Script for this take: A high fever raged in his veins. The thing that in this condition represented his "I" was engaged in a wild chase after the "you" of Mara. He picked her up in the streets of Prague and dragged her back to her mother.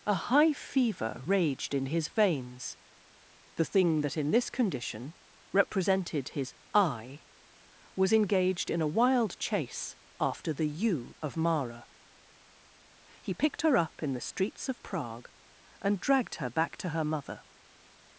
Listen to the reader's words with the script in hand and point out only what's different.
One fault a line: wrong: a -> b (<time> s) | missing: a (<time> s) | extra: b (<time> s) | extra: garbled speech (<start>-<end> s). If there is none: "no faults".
no faults